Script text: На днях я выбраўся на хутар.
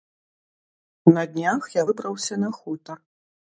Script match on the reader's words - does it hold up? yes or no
yes